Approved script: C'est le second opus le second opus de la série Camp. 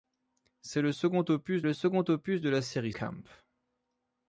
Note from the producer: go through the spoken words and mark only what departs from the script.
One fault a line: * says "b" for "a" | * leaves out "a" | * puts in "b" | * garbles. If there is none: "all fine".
all fine